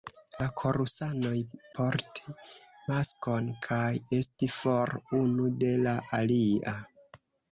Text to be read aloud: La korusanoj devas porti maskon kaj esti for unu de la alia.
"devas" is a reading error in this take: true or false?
true